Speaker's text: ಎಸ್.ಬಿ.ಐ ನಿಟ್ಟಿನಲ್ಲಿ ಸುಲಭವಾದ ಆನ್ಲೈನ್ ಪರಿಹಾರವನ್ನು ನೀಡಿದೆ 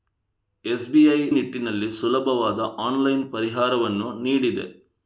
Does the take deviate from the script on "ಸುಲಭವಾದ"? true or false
false